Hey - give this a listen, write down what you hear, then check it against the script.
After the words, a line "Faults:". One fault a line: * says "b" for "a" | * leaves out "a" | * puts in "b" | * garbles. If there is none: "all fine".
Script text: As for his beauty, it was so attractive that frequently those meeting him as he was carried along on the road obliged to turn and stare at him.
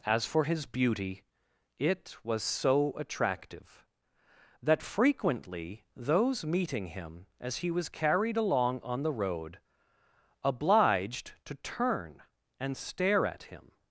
As for his beauty, it was so attractive that frequently those meeting him as he was carried along on the road obliged to turn and stare at him.
Faults:
all fine